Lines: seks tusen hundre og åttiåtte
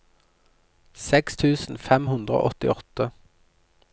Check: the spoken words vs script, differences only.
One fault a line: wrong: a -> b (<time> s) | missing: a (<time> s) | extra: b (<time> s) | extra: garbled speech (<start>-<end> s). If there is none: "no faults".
extra: fem (1.9 s)